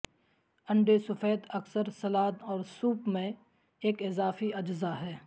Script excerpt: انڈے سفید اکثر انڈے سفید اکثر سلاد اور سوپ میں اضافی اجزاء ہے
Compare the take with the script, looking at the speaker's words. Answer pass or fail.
fail